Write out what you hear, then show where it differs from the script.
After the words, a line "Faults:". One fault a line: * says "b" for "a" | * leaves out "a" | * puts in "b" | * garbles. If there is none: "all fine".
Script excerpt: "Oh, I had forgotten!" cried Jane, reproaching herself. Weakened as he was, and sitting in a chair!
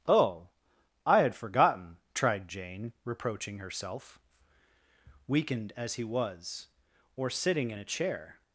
"Oh, I had forgotten!" tried Jane, reproaching herself. Weakened as he was, or sitting in a chair!
Faults:
* says "tried" for "cried"
* says "or" for "and"